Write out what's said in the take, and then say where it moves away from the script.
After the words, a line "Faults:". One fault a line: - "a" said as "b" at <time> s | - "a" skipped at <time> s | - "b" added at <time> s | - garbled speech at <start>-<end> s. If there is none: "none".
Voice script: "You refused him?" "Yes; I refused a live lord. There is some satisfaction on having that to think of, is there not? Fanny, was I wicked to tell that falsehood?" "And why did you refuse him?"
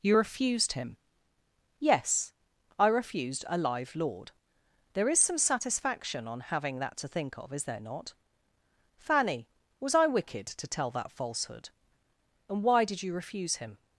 "You refused him?" "Yes; I refused a live lord. There is some satisfaction on having that to think of, is there not? Fanny, was I wicked to tell that falsehood?" "And why did you refuse him?"
Faults:
none